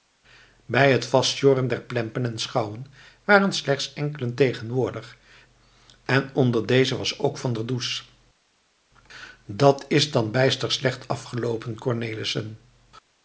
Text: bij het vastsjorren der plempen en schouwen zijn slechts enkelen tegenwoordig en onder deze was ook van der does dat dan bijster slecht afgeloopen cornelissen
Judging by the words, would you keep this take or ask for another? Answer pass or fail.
fail